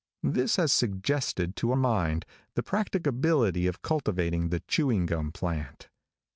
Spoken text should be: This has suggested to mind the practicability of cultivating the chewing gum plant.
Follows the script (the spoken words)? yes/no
yes